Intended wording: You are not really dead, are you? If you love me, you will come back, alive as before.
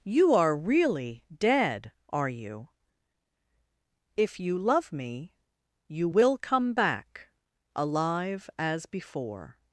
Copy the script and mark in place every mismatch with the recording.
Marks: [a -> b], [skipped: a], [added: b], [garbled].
You are [skipped: not] really dead, are you? If you love me, you will come back, alive as before.